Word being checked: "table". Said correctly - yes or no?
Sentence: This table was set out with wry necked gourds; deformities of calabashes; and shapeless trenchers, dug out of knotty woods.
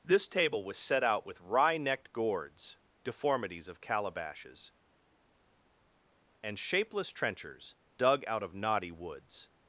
yes